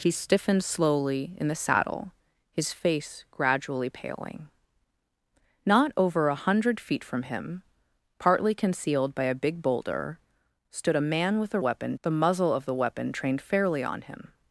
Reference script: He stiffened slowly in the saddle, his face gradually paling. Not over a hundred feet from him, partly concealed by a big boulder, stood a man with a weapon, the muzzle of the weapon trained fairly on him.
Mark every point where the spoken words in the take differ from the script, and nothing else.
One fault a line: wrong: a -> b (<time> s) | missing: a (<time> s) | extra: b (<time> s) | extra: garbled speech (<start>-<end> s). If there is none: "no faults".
no faults